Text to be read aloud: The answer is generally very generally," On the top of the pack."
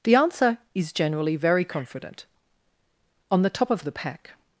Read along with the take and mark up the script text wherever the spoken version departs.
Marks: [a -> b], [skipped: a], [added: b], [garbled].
The answer is generally very [generally," -> confident] On the top of the pack."